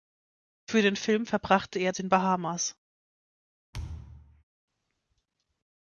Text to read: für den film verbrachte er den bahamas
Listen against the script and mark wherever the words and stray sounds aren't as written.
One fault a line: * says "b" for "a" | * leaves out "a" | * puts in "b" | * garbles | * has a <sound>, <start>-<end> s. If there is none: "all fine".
* has a thud, 3.7-4.4 s